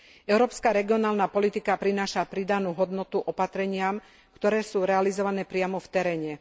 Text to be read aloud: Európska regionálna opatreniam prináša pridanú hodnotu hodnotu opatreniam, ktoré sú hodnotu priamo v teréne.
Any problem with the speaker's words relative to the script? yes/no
yes